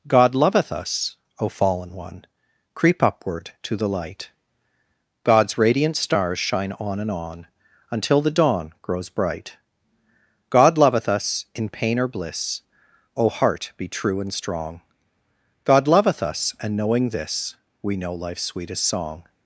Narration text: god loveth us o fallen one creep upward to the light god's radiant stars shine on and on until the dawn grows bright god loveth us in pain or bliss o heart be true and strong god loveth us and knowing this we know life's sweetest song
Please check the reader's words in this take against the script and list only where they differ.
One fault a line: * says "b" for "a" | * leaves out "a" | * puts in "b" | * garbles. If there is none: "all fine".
all fine